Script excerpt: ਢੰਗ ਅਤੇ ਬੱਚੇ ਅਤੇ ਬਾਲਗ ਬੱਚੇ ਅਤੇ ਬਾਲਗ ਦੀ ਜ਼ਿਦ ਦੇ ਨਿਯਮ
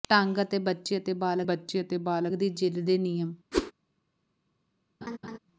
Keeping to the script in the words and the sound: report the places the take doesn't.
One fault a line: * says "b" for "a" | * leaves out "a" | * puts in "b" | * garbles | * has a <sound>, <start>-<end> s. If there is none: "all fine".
* has a whoosh, 3.5-3.7 s
* has a laugh, 5.0-5.4 s